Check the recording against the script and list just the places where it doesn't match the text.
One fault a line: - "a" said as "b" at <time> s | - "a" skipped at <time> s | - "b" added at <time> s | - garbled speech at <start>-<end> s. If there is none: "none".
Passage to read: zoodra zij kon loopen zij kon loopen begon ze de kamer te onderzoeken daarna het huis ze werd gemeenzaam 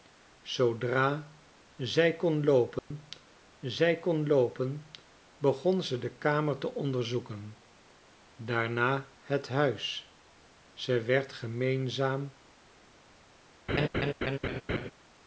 none